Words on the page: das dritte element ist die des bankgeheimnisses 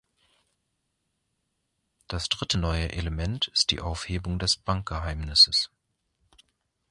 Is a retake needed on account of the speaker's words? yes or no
yes